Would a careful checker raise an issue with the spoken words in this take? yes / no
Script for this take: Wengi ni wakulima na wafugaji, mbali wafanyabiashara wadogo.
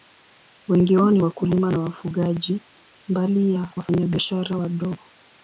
yes